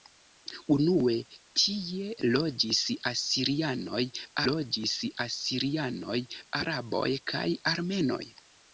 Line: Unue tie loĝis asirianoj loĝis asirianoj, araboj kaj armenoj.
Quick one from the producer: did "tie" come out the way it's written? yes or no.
yes